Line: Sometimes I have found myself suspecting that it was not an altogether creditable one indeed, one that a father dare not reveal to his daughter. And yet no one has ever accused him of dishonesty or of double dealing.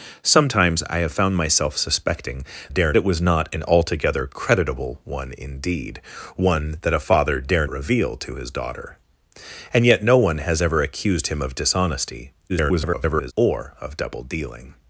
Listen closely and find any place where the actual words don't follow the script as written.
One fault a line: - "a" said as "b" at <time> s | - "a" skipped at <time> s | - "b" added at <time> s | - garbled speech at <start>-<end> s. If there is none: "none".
- "that" said as "dare" at 2.7 s
- "not" skipped at 7.7 s
- garbled speech at 12.5-13.3 s